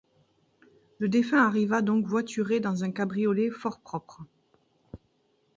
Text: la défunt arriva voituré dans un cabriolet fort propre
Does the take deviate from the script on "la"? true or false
true